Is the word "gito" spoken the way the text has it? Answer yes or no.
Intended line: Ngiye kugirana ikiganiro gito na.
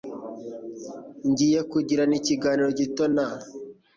yes